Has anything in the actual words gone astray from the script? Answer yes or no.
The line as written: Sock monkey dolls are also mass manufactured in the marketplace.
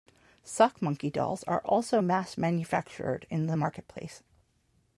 no